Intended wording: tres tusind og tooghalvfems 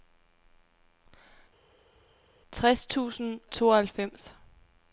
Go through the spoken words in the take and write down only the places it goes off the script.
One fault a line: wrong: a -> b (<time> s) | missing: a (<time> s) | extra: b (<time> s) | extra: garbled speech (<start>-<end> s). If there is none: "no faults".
missing: og (3.4 s)